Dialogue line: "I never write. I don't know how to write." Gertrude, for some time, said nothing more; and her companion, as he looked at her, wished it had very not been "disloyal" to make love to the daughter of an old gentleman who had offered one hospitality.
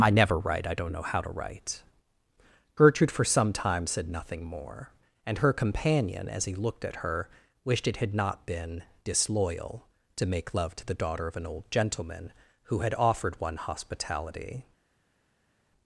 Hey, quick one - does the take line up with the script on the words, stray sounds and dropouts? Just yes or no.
no